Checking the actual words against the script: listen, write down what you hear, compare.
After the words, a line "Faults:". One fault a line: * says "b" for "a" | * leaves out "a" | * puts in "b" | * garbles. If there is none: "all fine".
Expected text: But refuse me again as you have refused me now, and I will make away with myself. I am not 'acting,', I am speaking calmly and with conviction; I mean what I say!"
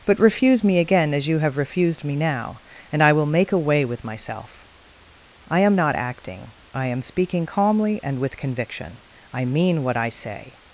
But refuse me again as you have refused me now, and I will make away with myself. I am not 'acting,', I am speaking calmly and with conviction; I mean what I say!"
Faults:
all fine